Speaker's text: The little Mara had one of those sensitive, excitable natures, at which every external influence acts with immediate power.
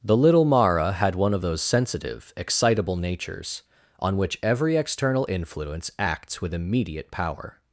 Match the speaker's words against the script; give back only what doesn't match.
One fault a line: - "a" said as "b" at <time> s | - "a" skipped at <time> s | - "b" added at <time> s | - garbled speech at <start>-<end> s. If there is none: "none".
- "at" said as "on" at 4.0 s